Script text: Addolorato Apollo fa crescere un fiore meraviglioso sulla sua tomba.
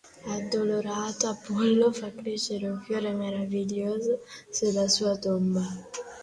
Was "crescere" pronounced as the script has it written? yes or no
yes